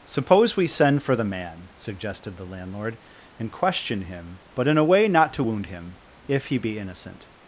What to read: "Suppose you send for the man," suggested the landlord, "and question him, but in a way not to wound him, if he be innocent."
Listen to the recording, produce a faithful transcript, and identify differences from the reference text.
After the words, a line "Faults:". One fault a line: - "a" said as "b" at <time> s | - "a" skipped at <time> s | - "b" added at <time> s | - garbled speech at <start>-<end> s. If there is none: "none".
"Suppose we send for the man," suggested the landlord, "and question him, but in a way not to wound him, if he be innocent."
Faults:
- "you" said as "we" at 0.6 s